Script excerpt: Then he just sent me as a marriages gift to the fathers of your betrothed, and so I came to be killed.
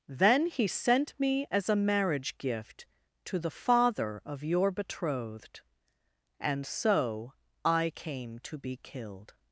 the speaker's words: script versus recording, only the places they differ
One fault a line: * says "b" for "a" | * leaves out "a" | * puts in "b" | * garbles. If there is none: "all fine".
* leaves out "just"
* says "marriage" for "marriages"
* says "father" for "fathers"